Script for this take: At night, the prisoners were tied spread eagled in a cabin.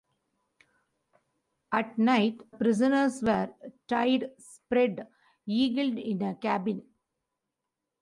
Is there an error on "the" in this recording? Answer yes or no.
yes